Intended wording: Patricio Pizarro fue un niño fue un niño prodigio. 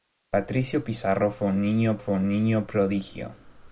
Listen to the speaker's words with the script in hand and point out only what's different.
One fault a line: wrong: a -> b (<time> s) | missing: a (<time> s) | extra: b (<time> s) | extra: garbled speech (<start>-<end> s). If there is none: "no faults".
no faults